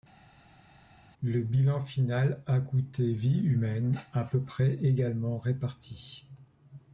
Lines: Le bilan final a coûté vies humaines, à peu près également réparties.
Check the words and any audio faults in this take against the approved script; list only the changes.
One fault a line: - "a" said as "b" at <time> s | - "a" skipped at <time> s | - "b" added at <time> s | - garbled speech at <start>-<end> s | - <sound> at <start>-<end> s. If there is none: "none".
none